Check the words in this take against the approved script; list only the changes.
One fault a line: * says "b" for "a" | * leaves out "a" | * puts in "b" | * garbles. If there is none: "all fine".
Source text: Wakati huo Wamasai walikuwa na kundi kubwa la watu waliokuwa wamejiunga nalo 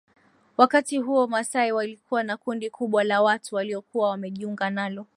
all fine